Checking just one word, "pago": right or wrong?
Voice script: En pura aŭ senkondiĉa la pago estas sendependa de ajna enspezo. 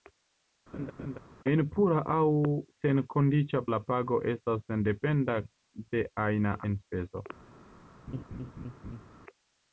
right